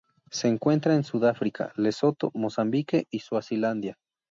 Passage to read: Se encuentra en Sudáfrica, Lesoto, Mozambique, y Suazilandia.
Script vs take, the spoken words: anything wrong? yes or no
no